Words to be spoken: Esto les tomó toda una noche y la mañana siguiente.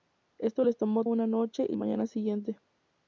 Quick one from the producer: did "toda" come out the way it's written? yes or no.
no